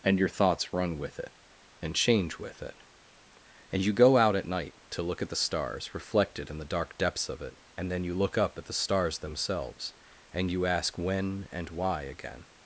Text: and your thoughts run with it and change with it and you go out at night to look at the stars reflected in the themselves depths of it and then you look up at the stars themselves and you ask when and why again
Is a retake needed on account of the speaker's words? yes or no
yes